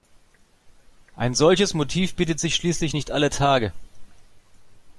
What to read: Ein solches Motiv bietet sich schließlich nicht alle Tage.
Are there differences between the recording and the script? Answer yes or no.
no